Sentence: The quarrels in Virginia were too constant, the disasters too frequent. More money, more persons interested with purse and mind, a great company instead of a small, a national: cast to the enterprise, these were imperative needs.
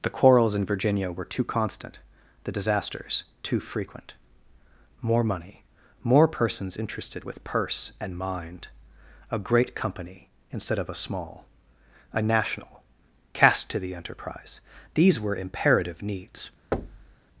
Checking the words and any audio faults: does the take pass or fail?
fail